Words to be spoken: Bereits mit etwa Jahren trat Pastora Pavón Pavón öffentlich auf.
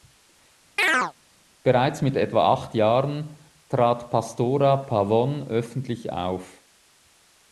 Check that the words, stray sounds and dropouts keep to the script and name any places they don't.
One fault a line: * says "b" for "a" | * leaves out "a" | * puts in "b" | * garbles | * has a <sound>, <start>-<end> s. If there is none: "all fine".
* has a chirp, 0.8-1.1 s
* puts in "acht"
* leaves out "Pavón"